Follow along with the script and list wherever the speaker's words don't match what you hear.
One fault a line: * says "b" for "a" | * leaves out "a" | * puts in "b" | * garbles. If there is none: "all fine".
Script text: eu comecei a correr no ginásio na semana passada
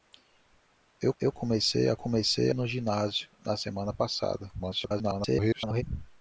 * puts in "eu"
* says "comecei" for "correr"
* garbles